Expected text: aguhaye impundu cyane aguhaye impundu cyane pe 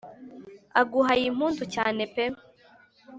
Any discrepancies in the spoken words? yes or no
yes